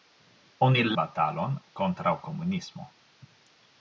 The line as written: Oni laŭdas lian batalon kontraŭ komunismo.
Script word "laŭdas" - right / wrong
wrong